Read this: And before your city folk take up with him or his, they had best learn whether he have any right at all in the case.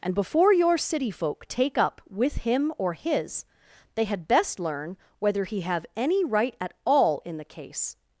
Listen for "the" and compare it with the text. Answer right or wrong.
right